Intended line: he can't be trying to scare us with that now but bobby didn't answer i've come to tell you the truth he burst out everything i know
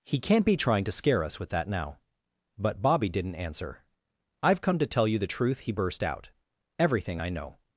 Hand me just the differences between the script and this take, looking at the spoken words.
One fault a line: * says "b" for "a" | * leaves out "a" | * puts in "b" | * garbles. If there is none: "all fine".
all fine